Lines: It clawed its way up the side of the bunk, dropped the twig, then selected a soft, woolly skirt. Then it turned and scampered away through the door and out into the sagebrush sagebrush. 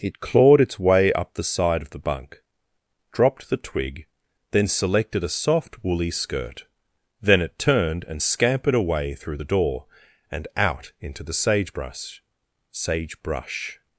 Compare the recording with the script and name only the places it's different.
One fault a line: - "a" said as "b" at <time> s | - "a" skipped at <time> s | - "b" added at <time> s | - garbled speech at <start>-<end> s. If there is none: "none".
none